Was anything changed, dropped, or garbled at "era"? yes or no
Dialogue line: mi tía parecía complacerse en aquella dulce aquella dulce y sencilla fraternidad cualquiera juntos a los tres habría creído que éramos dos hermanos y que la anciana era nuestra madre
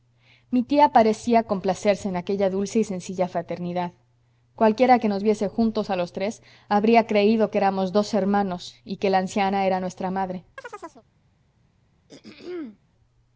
no